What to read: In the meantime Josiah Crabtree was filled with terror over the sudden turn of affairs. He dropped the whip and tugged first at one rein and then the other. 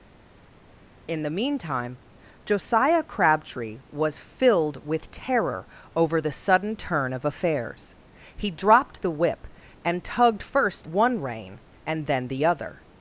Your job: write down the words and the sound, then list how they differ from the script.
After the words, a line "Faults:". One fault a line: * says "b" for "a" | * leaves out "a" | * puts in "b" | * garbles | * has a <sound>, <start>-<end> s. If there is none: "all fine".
In the meantime Josiah Crabtree was filled with terror over the sudden turn of affairs. He dropped the whip and tugged first one rein and then the other.
Faults:
* leaves out "at"